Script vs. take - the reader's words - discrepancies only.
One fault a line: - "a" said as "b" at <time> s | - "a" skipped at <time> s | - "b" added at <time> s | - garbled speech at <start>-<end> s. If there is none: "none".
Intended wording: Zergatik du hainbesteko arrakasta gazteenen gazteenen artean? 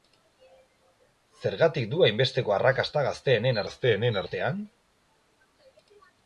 none